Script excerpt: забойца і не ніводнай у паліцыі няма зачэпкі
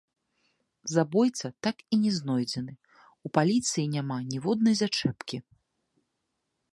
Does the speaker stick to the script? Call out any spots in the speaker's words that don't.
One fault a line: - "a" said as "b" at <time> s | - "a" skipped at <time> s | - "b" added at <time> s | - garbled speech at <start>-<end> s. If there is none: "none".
- "так" added at 1.7 s
- "ніводнай" said as "знойдзены" at 2.2 s
- "ніводнай" added at 4.3 s